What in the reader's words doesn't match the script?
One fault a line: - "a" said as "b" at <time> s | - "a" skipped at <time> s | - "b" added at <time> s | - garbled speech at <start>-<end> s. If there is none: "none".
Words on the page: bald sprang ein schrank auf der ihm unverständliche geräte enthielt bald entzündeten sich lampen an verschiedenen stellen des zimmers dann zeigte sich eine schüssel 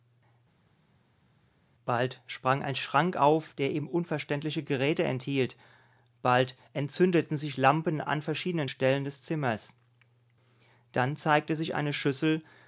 none